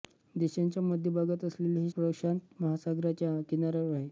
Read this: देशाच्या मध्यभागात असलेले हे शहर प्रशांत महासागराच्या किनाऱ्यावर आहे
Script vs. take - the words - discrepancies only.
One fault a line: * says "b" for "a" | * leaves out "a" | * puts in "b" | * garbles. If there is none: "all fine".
* leaves out "शहर"